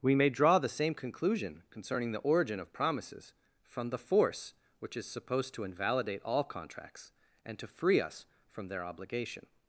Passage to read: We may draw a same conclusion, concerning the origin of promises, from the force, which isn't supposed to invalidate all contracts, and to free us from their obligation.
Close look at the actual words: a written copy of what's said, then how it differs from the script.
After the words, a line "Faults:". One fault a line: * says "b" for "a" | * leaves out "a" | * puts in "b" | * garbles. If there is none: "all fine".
We may draw the same conclusion, concerning the origin of promises, from the force, which is supposed to invalidate all contracts, and to free us from their obligation.
Faults:
* says "the" for "a"
* says "is" for "isn't"